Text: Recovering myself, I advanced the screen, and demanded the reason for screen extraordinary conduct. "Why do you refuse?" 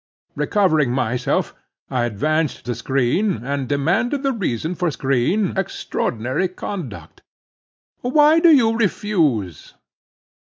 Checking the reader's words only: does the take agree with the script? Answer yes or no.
yes